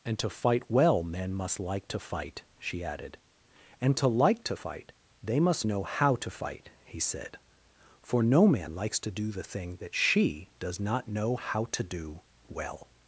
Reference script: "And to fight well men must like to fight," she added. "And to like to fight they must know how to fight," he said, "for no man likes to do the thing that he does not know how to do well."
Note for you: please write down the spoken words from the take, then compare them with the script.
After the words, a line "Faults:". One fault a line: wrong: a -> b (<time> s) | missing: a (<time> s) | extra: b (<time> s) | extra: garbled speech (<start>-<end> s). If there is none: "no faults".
"And to fight well men must like to fight," she added. "And to like to fight they must know how to fight," he said, "for no man likes to do the thing that she does not know how to do well."
Faults:
wrong: he -> she (9.9 s)